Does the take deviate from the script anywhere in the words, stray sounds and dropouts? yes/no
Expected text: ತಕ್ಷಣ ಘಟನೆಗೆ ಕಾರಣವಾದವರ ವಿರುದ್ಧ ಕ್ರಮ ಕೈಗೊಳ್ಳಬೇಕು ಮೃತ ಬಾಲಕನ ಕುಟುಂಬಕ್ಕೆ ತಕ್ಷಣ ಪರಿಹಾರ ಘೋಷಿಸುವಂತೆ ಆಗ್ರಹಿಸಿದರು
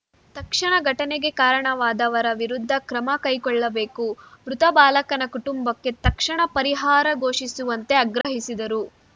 yes